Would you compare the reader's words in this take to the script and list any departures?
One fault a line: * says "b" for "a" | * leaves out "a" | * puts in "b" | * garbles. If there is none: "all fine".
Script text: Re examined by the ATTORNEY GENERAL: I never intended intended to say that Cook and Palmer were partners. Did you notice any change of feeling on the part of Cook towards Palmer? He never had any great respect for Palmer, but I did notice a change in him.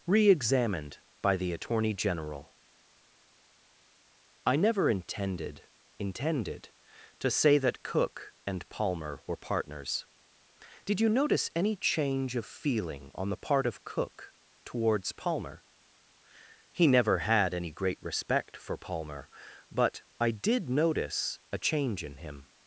all fine